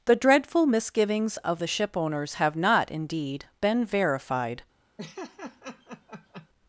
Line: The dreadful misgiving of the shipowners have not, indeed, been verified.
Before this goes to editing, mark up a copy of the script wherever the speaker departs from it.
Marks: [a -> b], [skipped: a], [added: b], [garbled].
The dreadful [misgiving -> misgivings] of the shipowners have not, indeed, been verified.